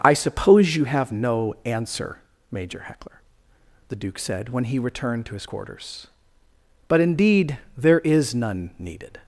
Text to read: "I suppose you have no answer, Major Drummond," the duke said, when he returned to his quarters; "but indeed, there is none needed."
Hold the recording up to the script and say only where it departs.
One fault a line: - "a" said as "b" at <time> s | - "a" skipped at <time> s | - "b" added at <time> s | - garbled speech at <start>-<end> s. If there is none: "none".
- "Drummond" said as "Heckler" at 2.9 s